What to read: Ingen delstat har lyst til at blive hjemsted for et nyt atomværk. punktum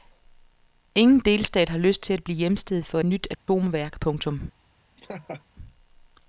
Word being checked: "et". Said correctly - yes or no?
no